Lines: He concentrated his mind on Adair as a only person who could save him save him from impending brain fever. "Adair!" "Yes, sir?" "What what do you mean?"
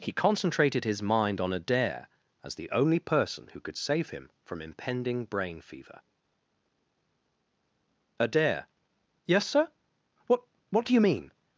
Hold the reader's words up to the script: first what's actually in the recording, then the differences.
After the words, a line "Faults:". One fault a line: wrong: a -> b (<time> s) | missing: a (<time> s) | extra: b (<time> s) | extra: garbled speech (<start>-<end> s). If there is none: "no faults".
He concentrated his mind on Adair as the only person who could save him from impending brain fever. "Adair!" "Yes, sir?" "What what do you mean?"
Faults:
wrong: a -> the (2.5 s)
missing: save him (4.3 s)